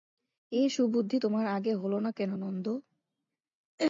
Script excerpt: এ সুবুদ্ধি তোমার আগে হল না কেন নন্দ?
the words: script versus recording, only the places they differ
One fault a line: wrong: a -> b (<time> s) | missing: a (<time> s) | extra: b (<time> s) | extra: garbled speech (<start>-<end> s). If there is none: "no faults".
no faults